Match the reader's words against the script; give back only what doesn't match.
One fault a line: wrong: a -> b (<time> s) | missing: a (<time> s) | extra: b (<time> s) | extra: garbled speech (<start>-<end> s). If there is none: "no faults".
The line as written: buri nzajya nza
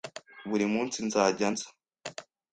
extra: munsi (0.7 s)